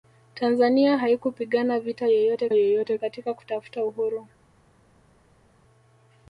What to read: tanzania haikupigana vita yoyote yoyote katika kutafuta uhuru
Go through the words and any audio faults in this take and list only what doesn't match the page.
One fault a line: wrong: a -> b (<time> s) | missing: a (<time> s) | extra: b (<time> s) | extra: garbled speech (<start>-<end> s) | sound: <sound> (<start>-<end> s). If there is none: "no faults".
no faults